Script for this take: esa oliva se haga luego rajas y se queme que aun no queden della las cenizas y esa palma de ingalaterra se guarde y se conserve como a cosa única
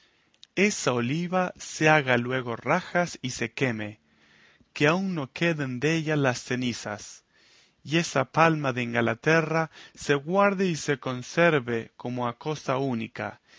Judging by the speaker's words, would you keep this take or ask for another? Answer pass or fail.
pass